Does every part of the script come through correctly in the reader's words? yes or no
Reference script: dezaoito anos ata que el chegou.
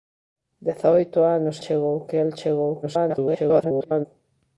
no